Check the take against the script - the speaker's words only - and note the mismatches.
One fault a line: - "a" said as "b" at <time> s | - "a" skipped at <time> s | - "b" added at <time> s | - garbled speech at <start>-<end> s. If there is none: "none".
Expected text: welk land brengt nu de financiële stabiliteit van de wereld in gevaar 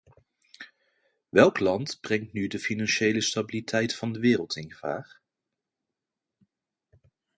none